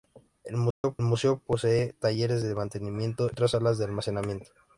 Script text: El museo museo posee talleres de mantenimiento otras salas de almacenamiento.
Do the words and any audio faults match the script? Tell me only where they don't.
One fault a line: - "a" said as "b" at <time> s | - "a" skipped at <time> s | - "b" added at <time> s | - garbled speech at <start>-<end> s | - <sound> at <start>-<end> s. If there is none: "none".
- dropout at 0.7-0.8 s